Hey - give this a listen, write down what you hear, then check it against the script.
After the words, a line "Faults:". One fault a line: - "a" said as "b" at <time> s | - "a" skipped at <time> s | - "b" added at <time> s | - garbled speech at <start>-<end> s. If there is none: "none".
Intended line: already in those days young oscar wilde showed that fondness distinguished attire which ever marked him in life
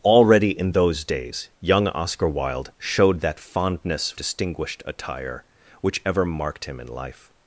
already in those days young oscar wilde showed that fondness distinguished attire which ever marked him in life
Faults:
none